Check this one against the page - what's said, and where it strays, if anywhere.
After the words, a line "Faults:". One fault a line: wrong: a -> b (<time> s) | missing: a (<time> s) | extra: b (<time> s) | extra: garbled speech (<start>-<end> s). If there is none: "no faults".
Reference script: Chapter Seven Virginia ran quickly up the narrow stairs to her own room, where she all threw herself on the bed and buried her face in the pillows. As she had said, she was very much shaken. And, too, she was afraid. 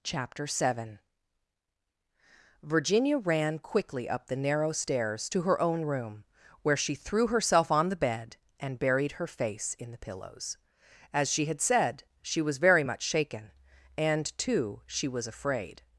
Chapter Seven Virginia ran quickly up the narrow stairs to her own room, where she threw herself on the bed and buried her face in the pillows. As she had said, she was very much shaken. And, too, she was afraid.
Faults:
missing: all (6.9 s)